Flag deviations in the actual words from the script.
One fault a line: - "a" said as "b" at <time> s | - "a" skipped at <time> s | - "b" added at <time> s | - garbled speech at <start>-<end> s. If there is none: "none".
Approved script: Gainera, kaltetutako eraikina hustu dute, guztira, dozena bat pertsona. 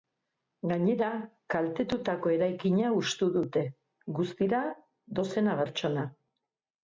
- "bat" skipped at 5.6 s